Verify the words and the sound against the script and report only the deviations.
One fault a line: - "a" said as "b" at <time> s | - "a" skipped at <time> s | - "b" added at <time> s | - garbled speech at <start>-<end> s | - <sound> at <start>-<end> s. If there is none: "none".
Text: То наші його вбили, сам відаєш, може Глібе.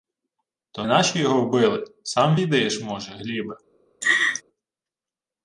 - laugh at 4.0-4.4 s